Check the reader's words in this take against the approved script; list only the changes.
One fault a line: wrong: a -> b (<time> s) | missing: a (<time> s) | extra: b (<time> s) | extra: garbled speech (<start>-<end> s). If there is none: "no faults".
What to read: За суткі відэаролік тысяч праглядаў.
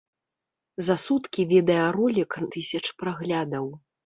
no faults